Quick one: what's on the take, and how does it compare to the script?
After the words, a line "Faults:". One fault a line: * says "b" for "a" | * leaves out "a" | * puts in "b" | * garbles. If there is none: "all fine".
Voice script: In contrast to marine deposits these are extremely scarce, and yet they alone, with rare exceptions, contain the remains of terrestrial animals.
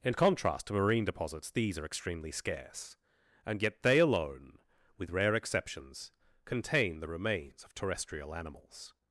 In contrast to marine deposits these are extremely scarce, and yet they alone, with rare exceptions, contain the remains of terrestrial animals.
Faults:
all fine